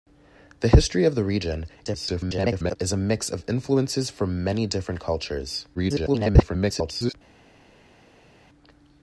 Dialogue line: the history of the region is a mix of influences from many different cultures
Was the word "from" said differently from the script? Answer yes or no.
no